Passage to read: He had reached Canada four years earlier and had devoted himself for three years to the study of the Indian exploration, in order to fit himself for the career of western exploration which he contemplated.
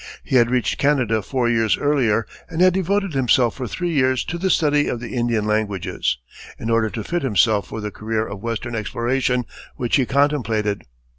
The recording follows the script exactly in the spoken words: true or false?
false